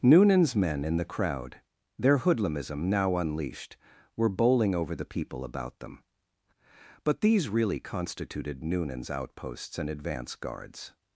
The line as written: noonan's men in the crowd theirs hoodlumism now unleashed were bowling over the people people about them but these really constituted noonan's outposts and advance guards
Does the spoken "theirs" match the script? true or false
false